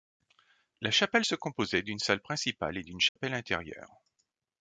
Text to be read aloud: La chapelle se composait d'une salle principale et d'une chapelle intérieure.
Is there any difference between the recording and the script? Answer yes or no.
no